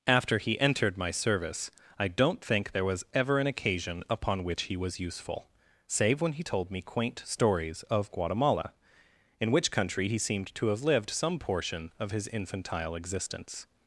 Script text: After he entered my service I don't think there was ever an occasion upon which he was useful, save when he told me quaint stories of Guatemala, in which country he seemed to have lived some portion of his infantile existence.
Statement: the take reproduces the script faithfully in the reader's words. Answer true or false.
true